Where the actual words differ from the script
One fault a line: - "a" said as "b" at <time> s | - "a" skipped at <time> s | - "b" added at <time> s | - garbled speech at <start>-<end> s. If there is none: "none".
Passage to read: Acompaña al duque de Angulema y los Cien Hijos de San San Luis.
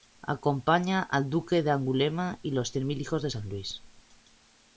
- "Mil" added at 2.9 s
- "San" skipped at 3.5 s